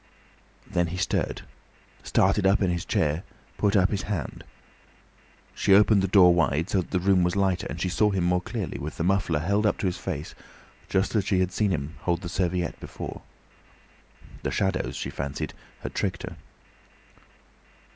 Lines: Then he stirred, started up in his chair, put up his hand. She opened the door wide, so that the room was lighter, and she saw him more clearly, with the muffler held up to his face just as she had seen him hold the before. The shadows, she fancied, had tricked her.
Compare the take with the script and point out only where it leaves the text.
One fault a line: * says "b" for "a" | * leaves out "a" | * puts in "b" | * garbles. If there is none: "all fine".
* puts in "serviette"